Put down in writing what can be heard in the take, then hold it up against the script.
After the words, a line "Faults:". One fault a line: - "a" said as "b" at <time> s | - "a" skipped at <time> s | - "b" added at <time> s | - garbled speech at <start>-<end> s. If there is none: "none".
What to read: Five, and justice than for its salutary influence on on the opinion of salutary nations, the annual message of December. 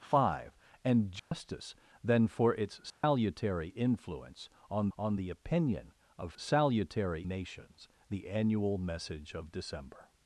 Five, and justice than for its salutary influence on on the opinion of salutary nations, the annual message of December.
Faults:
none